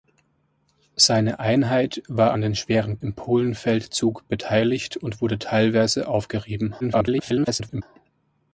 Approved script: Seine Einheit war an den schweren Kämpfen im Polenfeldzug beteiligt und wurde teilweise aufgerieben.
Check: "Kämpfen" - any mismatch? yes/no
yes